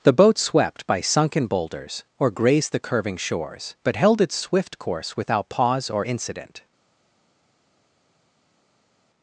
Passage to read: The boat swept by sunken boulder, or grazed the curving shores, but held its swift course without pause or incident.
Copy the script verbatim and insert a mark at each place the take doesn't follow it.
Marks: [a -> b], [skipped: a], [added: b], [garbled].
The boat swept by sunken [boulder, -> boulders] or grazed the curving shores, but held its swift course without pause or incident.